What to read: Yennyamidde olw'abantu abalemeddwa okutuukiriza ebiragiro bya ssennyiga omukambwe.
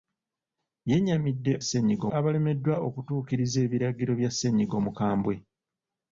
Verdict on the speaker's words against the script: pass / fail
fail